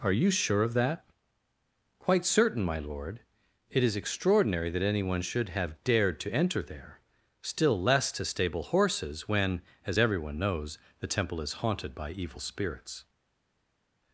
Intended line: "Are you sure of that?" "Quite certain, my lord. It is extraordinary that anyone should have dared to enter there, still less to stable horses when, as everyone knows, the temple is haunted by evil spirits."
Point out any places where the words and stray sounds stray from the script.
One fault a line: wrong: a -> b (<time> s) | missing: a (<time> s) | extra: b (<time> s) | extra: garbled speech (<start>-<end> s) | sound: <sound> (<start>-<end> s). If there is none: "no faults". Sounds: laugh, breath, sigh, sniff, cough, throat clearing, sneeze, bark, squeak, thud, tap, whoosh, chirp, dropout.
no faults